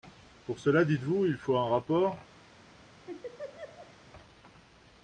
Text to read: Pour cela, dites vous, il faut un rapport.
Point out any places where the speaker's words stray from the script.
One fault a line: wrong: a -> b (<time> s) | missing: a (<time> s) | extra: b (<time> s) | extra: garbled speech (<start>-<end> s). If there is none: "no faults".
no faults